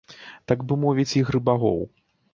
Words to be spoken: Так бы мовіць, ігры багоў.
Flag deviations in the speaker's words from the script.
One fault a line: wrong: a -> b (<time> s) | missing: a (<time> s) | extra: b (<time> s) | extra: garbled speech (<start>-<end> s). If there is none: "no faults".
no faults